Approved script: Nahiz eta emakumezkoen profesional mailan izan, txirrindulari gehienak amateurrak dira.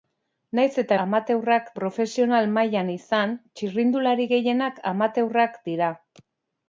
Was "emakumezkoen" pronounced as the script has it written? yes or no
no